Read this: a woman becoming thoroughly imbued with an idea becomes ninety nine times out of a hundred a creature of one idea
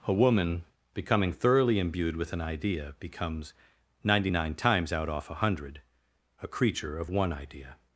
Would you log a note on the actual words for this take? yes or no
yes